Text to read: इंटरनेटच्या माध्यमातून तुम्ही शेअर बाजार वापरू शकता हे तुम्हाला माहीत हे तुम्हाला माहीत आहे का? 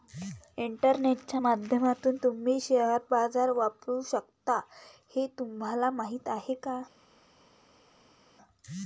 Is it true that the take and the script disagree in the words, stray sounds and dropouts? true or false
true